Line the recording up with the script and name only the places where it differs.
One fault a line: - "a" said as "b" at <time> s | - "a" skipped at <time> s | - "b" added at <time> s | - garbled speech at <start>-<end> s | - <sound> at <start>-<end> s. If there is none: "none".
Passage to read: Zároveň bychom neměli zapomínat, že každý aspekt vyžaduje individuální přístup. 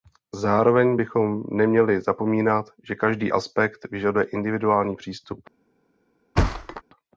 - thud at 6.4-6.8 s